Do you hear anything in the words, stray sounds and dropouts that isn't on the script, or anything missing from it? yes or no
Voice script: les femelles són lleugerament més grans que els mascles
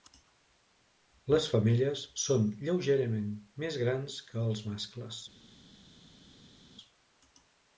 no